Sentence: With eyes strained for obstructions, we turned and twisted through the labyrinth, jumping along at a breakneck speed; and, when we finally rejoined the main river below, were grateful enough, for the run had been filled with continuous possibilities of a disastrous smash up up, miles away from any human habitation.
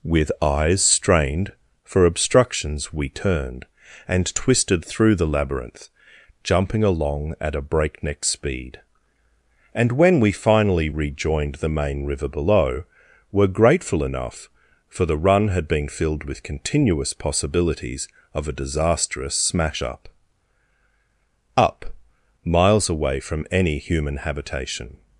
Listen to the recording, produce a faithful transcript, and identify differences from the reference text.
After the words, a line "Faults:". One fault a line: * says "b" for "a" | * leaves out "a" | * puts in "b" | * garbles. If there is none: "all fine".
With eyes strained for obstructions, we turned and twisted through the labyrinth, jumping along at a breakneck speed; and, when we finally rejoined the main river below, were grateful enough, for the run had been filled with continuous possibilities of a disastrous smash up up, miles away from any human habitation.
Faults:
all fine